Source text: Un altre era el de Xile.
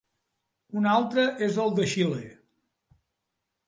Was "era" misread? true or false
true